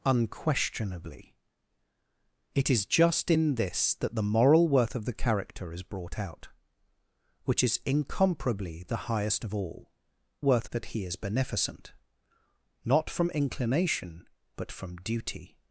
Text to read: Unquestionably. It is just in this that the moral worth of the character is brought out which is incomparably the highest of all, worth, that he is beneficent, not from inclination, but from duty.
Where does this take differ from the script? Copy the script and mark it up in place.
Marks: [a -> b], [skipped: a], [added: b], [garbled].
Unquestionably. It is just in this that the moral worth of the character is brought out which is incomparably the highest of all, worth, that he is beneficent, not from inclination, but from duty.